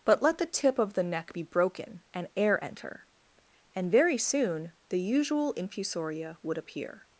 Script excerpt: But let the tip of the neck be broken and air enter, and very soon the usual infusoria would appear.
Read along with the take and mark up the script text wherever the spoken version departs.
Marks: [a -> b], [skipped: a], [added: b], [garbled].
But let the tip of the neck be broken and air enter, and very soon the usual infusoria would appear.